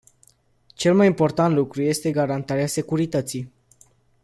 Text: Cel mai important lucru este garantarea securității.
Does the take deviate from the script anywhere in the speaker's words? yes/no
no